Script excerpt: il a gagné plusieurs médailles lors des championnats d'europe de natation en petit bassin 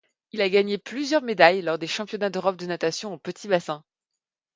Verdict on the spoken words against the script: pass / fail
pass